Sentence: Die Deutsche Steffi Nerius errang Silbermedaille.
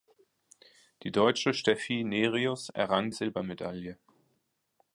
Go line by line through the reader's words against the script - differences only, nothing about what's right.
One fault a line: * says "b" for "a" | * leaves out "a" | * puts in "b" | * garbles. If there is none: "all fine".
all fine